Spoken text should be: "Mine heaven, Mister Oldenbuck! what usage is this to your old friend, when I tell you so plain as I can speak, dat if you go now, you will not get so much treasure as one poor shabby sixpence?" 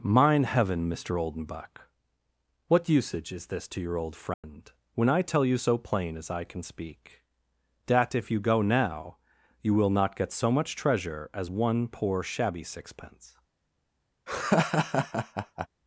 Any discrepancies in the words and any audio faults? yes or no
yes